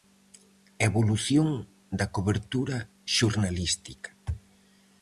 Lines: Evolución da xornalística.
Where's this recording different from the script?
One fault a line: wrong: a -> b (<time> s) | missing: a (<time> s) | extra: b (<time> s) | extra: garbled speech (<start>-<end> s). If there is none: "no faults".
extra: cobertura (2.1 s)